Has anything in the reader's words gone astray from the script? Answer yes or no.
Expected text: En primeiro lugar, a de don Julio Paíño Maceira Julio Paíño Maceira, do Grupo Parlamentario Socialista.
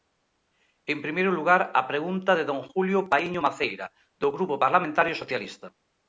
yes